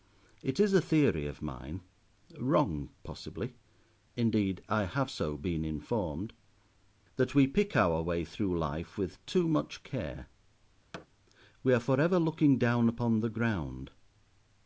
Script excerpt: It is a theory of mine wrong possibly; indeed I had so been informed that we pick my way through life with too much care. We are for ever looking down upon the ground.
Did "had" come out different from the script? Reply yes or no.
yes